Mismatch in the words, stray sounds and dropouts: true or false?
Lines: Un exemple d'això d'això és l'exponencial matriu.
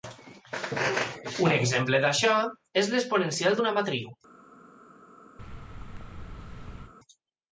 true